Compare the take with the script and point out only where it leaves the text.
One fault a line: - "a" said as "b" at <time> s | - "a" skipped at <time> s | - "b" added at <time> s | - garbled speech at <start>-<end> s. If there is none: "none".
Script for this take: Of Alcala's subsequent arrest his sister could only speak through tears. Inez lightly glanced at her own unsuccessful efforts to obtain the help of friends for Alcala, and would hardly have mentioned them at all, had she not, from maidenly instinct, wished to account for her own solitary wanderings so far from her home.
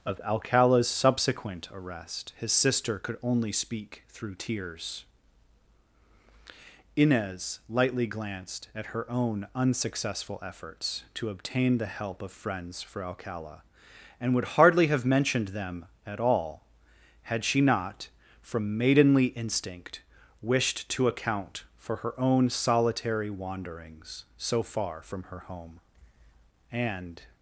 - "And" added at 26.7 s